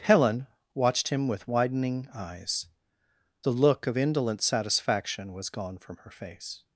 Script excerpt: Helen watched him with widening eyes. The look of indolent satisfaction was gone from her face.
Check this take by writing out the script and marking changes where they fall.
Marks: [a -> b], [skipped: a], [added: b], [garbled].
Helen watched him with widening eyes. The look of indolent satisfaction was gone from her face.